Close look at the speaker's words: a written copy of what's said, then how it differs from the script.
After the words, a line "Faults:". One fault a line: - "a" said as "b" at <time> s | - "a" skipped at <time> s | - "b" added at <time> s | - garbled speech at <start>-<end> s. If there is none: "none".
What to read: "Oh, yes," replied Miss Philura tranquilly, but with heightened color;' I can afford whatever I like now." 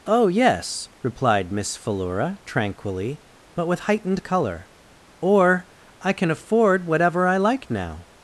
"Oh, yes," replied Miss Philura tranquilly, but with heightened color;' or I can afford whatever I like now."
Faults:
- "or" added at 5.2 s